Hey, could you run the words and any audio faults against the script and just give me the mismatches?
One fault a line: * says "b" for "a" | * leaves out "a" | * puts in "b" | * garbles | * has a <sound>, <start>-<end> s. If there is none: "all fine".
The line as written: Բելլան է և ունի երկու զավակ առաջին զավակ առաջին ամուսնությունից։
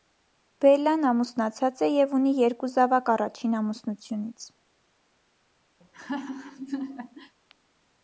* puts in "ամուսնացած"
* leaves out "զավակ առաջին"
* has a laugh, 5.8-7.4 s